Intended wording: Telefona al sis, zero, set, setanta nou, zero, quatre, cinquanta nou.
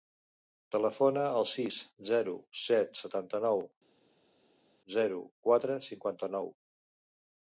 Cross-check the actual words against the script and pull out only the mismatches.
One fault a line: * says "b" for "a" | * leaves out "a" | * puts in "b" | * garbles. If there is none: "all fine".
all fine